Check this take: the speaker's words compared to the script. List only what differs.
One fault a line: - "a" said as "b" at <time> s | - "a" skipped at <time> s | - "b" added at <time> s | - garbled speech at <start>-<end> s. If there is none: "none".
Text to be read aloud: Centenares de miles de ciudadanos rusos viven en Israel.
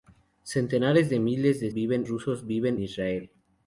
- "ciudadanos" said as "viven" at 1.7 s
- "en" skipped at 2.8 s